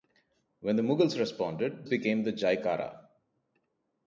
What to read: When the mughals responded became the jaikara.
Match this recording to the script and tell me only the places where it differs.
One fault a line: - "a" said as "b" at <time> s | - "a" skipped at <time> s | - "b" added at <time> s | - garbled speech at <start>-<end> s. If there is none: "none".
none